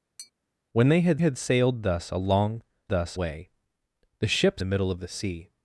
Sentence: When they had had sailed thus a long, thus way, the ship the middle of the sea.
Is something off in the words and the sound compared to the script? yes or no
yes